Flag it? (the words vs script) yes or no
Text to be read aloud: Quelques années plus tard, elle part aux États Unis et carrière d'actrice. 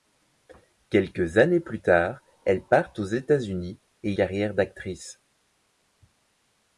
no